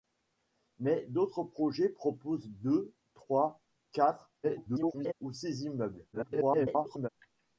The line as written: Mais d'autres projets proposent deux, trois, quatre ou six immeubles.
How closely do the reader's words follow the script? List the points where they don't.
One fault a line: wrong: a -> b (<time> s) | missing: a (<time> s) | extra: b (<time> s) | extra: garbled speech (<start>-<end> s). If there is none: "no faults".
extra: garbled speech (4.4-5.1 s)
extra: garbled speech (6.1-7.1 s)